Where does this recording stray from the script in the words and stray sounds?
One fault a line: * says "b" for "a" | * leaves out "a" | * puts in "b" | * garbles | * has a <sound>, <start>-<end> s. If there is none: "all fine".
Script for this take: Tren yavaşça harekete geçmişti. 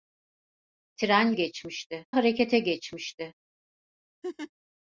* says "geçmişti" for "yavaşça"
* has a laugh, 4.2-4.5 s